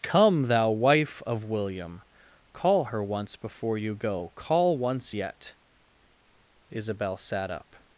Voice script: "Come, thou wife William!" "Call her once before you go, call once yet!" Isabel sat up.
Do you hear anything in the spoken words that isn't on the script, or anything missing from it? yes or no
yes